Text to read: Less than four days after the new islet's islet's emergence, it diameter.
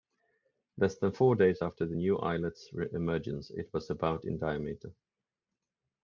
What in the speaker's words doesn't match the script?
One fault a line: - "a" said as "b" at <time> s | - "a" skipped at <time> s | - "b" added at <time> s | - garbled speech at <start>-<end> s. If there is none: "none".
- "islet's" skipped at 2.7 s
- "was about in" added at 3.7 s